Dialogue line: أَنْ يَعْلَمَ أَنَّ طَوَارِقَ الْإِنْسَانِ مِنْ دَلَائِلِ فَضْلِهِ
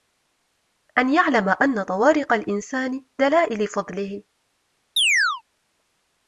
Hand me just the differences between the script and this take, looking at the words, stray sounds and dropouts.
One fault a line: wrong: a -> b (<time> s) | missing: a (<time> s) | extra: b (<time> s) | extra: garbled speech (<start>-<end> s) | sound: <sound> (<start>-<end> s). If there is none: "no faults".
missing: مِنْ (3.0 s)
sound: chirp (5.0-5.4 s)